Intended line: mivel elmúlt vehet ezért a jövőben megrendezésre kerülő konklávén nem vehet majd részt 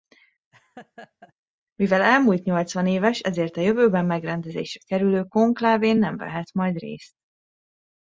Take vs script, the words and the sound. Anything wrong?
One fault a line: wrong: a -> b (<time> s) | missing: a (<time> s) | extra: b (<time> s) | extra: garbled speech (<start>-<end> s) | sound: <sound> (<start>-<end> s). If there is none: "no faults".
sound: laugh (0.5-1.3 s)
wrong: vehet -> nyolcvanéves (2.4 s)